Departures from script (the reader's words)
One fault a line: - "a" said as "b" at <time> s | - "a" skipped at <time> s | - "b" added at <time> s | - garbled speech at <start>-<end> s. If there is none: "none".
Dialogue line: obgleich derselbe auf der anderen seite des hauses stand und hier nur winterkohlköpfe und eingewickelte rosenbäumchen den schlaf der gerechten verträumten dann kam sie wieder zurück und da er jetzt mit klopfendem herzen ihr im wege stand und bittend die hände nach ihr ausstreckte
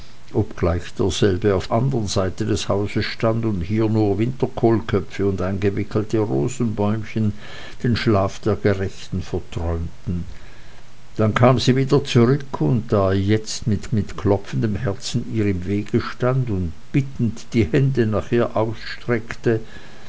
- "der" skipped at 1.7 s
- "mit" added at 13.9 s